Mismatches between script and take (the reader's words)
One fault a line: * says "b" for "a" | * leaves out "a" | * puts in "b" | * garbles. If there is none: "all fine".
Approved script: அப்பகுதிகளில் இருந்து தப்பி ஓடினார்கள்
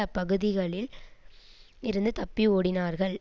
all fine